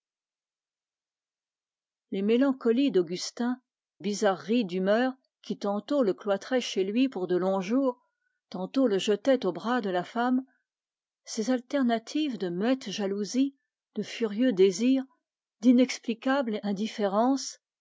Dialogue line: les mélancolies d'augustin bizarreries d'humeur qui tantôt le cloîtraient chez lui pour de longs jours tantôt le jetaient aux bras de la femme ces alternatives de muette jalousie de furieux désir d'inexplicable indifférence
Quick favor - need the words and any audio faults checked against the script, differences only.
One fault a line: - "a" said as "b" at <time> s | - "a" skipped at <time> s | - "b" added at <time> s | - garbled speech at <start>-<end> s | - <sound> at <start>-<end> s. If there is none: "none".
none